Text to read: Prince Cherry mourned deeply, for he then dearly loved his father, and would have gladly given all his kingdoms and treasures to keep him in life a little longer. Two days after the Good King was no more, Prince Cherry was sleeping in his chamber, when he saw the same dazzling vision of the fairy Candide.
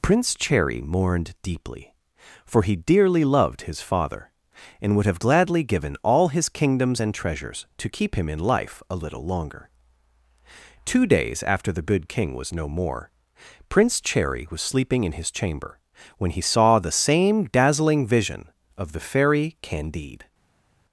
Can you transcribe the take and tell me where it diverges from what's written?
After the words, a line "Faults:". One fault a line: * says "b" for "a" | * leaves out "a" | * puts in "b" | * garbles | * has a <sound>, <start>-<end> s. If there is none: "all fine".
Prince Cherry mourned deeply, for he dearly loved his father, and would have gladly given all his kingdoms and treasures to keep him in life a little longer. Two days after the Good King was no more, Prince Cherry was sleeping in his chamber, when he saw the same dazzling vision of the fairy Candide.
Faults:
* leaves out "then"